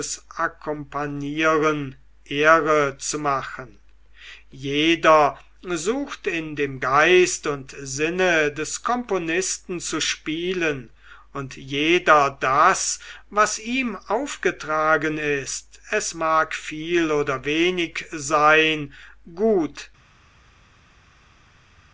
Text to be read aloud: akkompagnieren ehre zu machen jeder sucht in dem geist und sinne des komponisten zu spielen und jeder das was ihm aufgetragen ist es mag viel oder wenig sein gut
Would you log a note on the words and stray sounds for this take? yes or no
no